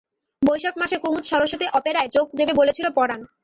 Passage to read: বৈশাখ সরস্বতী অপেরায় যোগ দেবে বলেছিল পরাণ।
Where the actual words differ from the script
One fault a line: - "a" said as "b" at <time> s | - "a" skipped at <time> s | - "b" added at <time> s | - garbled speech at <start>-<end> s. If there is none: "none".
- "মাসে কুমুদ" added at 0.8 s